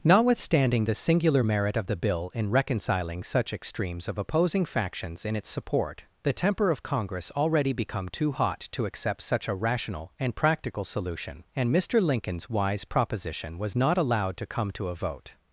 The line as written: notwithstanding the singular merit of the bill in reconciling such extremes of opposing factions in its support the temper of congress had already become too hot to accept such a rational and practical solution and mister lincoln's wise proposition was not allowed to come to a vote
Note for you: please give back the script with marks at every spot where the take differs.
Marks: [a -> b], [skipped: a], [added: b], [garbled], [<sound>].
notwithstanding the singular merit of the bill in reconciling such extremes of opposing factions in its support the temper of congress [skipped: had] already become too hot to accept such a rational and practical solution and mister lincoln's wise proposition was not allowed to come to a vote